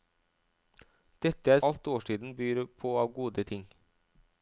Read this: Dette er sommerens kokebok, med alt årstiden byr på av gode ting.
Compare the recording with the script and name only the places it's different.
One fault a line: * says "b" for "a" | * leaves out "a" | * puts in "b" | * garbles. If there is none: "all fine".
* leaves out "sommerens kokebok med"